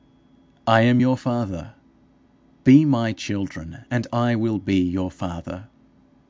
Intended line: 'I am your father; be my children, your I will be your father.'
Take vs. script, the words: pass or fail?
fail